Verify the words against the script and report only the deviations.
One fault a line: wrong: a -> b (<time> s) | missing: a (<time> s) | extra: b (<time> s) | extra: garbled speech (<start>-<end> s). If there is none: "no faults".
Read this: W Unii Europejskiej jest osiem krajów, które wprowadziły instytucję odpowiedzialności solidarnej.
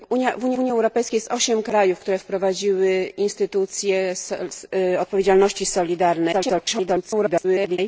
extra: Unii (0.6 s)
extra: garbled speech (6.3-7.8 s)